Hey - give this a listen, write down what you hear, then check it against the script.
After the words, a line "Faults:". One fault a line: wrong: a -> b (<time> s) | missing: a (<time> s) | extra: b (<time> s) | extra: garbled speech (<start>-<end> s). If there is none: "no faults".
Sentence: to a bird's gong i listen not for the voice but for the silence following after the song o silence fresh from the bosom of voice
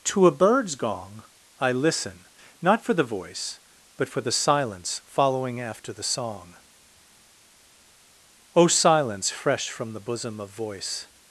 to a bird's gong i listen not for the voice but for the silence following after the song o silence fresh from the bosom of voice
Faults:
no faults